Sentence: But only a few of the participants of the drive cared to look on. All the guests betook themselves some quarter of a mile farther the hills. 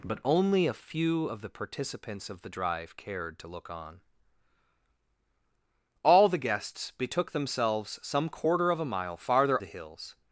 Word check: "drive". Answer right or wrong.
right